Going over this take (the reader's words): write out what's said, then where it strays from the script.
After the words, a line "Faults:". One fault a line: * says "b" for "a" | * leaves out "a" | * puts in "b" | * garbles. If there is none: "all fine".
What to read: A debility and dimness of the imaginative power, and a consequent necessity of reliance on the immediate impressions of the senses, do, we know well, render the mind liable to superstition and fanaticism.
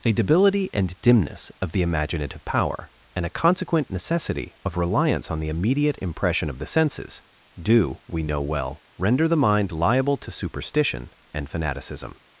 A debility and dimness of the imaginative power, and a consequent necessity of reliance on the immediate impression of the senses, do, we know well, render the mind liable to superstition and fanaticism.
Faults:
* says "impression" for "impressions"